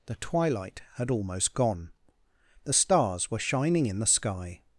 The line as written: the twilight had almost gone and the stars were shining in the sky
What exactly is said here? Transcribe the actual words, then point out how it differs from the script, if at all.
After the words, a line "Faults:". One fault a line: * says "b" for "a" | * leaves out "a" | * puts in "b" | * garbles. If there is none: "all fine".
the twilight had almost gone the stars were shining in the sky
Faults:
* leaves out "and"